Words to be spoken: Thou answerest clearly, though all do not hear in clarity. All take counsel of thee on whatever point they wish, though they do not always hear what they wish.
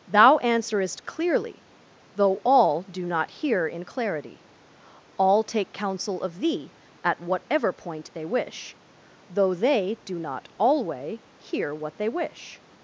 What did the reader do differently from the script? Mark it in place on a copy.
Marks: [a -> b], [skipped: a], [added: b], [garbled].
Thou answerest clearly, though all do not hear in clarity. All take counsel of thee [on -> at] whatever point they wish, though they do not [always -> alway] hear what they wish.